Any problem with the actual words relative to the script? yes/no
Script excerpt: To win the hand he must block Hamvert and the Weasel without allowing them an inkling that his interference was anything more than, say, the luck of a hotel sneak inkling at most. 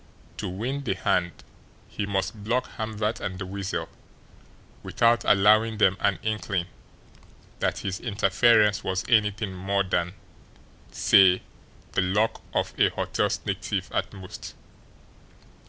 yes